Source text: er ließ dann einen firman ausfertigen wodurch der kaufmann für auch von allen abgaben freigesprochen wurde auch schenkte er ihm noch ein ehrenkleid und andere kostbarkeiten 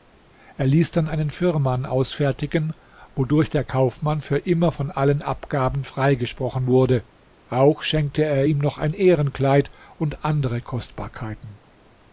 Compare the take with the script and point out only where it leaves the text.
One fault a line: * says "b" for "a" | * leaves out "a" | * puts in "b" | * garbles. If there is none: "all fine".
* says "immer" for "auch"